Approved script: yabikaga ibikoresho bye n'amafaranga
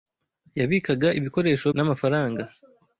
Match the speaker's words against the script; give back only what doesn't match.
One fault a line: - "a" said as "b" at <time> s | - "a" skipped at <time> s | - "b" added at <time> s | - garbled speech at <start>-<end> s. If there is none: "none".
- "bye" skipped at 1.7 s